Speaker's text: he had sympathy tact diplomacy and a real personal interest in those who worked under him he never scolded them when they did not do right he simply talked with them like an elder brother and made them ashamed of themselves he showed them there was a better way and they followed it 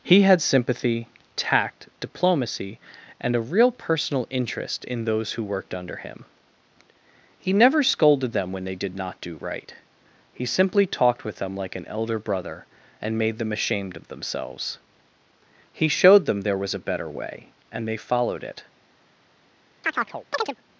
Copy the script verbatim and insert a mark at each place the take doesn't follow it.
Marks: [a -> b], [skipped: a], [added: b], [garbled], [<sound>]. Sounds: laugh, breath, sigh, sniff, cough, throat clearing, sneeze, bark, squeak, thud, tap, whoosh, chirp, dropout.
he had sympathy tact diplomacy and a real personal interest in those who worked under him he never scolded them when they did not do right he simply talked with them like an elder brother and made them ashamed of themselves he showed them there was a better way and they followed it [chirp]